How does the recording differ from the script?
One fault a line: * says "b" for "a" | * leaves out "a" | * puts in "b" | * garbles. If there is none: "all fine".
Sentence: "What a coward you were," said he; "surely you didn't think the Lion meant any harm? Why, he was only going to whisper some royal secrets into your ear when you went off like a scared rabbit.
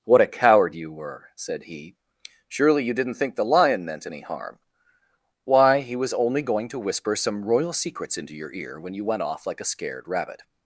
all fine